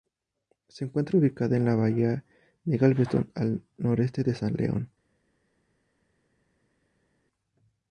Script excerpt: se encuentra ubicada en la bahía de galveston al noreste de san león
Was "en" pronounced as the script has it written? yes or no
yes